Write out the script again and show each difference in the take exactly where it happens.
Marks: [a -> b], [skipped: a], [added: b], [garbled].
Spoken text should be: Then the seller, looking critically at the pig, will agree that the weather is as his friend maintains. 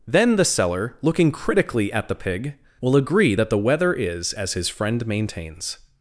Then the seller, looking critically at the pig, will agree that the weather is as his friend maintains.